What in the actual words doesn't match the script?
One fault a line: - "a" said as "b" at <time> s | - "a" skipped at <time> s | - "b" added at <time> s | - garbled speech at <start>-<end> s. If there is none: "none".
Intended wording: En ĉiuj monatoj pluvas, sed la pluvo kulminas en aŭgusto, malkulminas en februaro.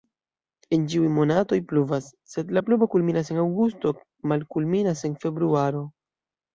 none